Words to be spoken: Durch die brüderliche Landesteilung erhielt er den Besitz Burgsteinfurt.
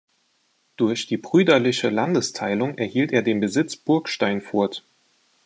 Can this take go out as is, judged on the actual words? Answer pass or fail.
pass